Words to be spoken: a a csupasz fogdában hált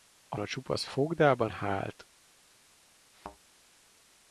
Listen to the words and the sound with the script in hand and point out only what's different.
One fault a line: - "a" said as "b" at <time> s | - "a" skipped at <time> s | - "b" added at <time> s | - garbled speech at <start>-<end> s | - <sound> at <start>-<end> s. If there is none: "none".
- thud at 3.1-3.4 s